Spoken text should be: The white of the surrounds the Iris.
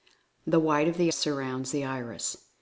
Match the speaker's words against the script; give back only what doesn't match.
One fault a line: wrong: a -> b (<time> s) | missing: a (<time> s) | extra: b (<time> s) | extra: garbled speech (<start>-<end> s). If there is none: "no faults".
no faults